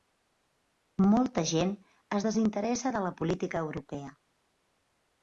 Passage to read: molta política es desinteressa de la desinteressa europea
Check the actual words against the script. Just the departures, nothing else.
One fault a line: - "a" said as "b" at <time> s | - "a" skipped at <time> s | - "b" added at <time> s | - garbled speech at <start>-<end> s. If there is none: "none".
- "política" said as "gent" at 1.5 s
- "desinteressa" said as "política" at 3.2 s